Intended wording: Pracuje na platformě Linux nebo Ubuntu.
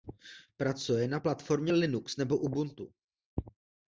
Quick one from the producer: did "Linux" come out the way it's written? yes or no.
yes